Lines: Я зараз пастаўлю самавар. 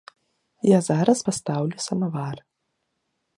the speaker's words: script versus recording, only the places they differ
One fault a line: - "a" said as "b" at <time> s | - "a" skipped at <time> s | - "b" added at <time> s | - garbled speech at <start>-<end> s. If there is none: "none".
none